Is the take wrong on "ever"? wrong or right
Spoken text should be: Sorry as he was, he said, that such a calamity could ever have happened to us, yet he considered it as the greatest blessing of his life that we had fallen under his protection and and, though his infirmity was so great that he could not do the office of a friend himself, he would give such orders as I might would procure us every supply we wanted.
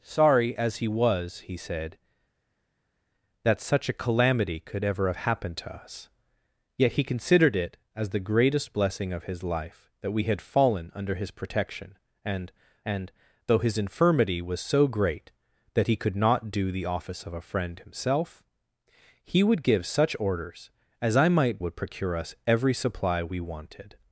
right